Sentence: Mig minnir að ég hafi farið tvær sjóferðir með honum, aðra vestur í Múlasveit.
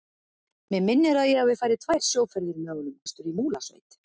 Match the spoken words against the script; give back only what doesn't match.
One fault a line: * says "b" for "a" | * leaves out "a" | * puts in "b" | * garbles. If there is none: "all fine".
* leaves out "aðra"